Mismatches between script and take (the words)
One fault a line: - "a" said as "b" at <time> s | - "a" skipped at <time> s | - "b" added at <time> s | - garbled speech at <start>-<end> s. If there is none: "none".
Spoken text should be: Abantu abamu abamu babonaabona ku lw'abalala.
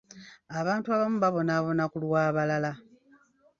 - "abamu" skipped at 1.2 s